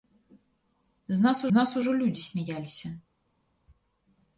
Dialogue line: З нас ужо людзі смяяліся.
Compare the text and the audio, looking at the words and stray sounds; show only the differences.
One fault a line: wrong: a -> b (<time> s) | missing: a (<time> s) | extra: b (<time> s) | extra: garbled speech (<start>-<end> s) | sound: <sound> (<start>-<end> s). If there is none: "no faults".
extra: нас (1.5 s)